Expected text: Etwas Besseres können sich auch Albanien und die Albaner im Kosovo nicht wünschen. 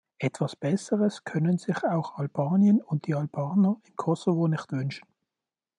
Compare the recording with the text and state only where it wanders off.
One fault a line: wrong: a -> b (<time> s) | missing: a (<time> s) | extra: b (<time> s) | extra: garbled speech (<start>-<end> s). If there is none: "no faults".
no faults